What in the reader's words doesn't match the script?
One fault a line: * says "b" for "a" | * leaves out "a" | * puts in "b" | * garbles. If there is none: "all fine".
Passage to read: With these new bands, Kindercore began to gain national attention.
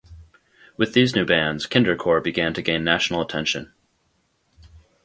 all fine